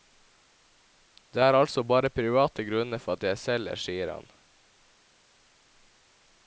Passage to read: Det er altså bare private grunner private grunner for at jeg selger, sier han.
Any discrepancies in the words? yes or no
yes